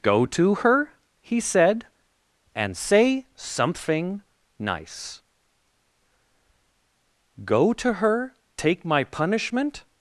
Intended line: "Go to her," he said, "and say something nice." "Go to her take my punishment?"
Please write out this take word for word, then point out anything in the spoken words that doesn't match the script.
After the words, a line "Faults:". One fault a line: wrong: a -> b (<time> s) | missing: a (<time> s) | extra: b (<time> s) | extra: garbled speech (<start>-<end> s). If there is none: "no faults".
"Go to her," he said, "and say something nice." "Go to her take my punishment?"
Faults:
no faults